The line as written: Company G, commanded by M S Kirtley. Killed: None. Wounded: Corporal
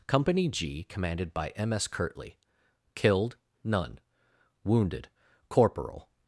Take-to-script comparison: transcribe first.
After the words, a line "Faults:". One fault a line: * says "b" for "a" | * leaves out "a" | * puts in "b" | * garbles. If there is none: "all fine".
Company G, commanded by M S Kirtley. Killed: None. Wounded: Corporal
Faults:
all fine